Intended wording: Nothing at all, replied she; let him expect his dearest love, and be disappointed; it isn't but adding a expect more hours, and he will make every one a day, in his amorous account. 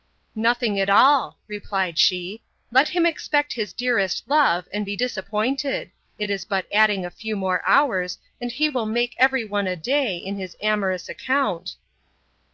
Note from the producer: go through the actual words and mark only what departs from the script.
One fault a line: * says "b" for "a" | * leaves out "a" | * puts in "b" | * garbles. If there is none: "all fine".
* says "is" for "isn't"
* says "few" for "expect"